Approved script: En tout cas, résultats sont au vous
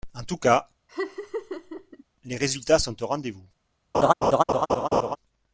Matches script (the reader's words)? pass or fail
fail